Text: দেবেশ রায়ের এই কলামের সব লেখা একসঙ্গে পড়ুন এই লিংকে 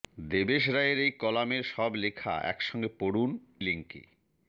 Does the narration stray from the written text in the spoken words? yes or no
yes